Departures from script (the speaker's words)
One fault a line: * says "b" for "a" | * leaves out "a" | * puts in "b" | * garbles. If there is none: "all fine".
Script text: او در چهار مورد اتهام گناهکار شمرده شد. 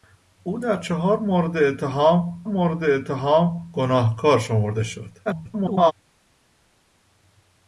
* puts in "مورد اتهام"
* garbles